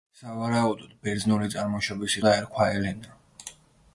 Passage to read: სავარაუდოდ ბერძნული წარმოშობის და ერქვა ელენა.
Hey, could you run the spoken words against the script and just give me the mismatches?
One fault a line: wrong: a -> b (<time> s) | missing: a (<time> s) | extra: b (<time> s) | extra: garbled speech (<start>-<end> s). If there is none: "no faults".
no faults